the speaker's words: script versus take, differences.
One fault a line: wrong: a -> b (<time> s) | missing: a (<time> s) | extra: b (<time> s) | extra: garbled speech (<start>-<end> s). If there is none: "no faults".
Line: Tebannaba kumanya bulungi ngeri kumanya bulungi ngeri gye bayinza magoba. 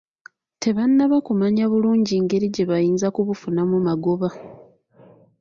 missing: kumanya bulungi ngeri (2.5 s)
extra: kubufunamu (3.1 s)